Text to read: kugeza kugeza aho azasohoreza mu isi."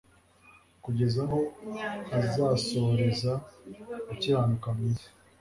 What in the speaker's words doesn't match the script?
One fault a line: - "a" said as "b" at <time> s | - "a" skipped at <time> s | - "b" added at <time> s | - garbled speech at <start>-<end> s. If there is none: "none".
- "kugeza" skipped at 1.2 s
- "gukiranuka" added at 4.1 s